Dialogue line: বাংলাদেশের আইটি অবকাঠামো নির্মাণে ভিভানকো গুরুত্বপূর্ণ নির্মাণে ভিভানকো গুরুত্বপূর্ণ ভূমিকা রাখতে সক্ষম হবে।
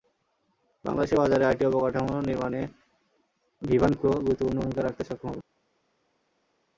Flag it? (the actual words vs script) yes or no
yes